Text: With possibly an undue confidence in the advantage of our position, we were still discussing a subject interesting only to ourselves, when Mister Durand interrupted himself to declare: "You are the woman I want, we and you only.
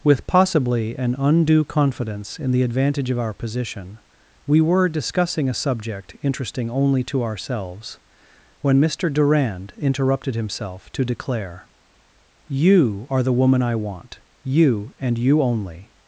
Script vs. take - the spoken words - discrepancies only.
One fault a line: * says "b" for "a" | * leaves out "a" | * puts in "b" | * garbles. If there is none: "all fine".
* leaves out "still"
* says "you" for "we"